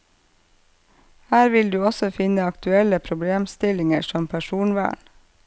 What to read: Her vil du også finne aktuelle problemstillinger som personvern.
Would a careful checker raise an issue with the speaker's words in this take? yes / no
no